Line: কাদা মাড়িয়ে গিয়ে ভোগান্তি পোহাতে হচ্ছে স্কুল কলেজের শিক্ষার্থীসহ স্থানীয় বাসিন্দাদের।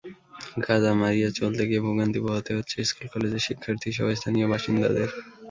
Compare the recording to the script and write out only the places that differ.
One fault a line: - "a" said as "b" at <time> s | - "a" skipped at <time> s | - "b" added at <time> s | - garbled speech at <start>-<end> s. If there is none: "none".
- "চলতে" added at 1.4 s